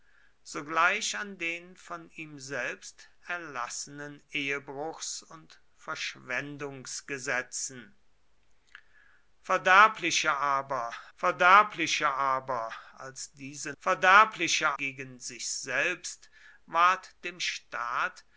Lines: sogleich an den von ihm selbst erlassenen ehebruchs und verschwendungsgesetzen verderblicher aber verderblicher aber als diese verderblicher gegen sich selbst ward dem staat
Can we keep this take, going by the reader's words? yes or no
yes